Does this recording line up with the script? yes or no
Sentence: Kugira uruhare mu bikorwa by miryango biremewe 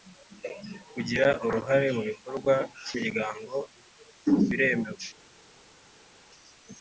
yes